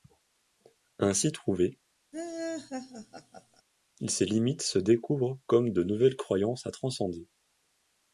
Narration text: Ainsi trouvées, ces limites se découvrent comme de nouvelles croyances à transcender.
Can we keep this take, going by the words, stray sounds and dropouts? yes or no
no